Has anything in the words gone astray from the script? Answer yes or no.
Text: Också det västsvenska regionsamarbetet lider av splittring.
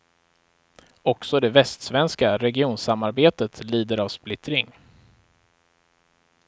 no